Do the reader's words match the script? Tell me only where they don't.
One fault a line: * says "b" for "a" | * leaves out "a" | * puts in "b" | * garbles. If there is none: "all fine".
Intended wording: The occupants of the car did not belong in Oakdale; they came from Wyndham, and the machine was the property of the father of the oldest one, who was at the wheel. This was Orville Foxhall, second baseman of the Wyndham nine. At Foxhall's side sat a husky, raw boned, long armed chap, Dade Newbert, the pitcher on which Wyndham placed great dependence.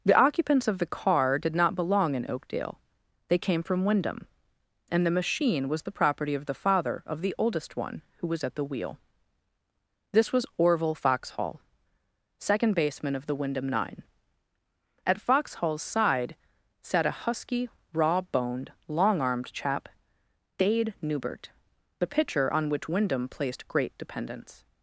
all fine